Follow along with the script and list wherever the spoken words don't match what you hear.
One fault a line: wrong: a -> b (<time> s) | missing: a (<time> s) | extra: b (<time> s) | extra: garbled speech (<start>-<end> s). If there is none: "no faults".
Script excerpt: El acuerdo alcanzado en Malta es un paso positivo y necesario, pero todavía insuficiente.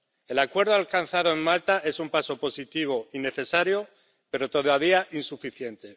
no faults